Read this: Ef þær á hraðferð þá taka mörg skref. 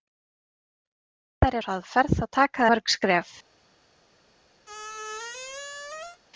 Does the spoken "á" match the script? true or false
true